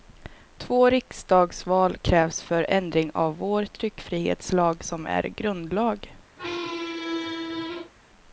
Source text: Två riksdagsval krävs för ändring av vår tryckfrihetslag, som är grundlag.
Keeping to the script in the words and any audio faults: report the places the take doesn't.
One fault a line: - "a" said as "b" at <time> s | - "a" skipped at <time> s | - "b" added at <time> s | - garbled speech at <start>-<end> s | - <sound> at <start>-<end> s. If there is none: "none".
- squeak at 6.4-7.9 s